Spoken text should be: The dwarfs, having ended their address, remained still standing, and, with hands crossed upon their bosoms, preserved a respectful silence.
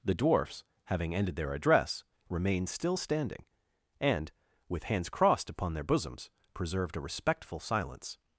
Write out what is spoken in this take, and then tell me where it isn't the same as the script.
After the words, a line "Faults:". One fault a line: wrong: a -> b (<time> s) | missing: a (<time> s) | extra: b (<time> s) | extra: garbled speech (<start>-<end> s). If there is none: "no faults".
The dwarfs, having ended their address, remained still standing, and, with hands crossed upon their bosoms, preserved a respectful silence.
Faults:
no faults